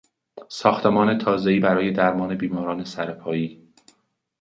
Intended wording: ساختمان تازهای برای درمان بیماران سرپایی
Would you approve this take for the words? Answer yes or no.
yes